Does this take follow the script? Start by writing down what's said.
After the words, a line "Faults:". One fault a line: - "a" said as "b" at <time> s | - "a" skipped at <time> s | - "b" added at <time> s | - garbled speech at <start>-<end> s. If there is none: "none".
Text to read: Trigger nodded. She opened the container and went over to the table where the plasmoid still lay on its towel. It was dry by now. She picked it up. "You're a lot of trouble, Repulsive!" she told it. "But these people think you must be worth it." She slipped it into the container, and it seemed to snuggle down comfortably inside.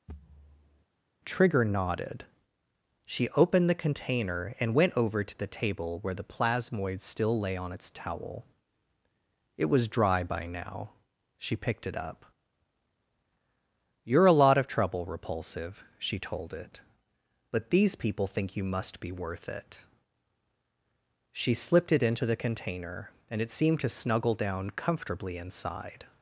Trigger nodded. She opened the container and went over to the table where the plasmoid still lay on its towel. It was dry by now. She picked it up. "You're a lot of trouble, Repulsive!" she told it. "But these people think you must be worth it." She slipped it into the container, and it seemed to snuggle down comfortably inside.
Faults:
none